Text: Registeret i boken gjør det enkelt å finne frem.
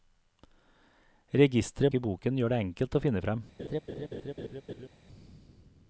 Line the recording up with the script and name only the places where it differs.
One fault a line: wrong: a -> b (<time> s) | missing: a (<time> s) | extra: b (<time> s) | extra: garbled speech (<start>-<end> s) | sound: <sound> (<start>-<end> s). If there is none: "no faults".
sound: laugh (3.6-4.9 s)